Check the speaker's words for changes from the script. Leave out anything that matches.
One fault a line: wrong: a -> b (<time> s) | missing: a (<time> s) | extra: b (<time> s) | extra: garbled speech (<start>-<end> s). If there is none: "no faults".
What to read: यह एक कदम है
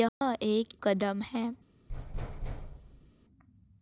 no faults